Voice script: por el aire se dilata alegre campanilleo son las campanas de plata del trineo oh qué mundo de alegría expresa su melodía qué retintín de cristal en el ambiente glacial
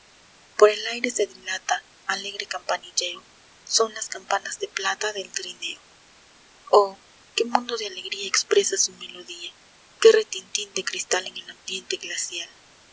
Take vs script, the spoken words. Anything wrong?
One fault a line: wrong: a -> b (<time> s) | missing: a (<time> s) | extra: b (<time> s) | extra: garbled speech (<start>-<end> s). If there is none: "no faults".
no faults